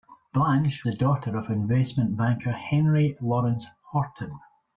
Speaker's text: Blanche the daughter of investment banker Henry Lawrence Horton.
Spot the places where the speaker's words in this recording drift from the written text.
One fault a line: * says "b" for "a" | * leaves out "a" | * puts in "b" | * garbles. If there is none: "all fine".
all fine